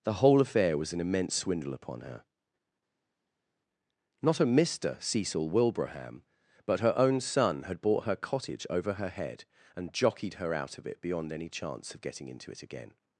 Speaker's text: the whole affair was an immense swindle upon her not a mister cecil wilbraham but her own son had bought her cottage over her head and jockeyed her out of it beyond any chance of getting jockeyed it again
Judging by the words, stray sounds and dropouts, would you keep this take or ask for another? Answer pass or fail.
fail